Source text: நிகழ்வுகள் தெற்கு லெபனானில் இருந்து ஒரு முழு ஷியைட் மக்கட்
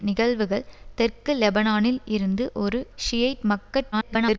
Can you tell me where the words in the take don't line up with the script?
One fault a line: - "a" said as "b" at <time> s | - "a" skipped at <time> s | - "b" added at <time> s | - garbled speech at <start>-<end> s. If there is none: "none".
- "முழு" skipped at 2.8 s
- garbled speech at 3.9-4.4 s